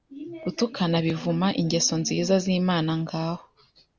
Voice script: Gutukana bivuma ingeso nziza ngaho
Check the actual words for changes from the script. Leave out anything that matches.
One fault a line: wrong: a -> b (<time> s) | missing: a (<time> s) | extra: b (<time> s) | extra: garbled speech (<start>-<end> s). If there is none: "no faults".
extra: z'Imana (2.4 s)